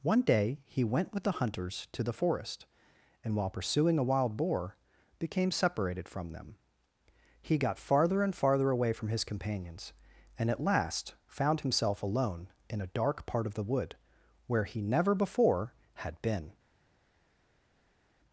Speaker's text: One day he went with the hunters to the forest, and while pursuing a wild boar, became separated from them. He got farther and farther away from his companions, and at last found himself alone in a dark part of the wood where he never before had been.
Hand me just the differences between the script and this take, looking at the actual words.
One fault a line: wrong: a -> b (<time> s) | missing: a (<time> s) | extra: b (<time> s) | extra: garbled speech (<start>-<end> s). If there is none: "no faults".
no faults